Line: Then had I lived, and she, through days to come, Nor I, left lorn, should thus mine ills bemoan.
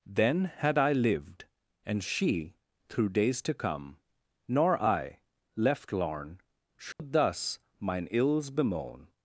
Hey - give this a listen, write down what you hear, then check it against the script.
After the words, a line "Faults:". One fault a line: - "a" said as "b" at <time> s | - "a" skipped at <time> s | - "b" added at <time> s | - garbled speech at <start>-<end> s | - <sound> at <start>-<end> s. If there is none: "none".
Then had I lived, and she, through days to come, Nor I, left lorn, should thus mine ills bemoan.
Faults:
- dropout at 6.9-7.0 s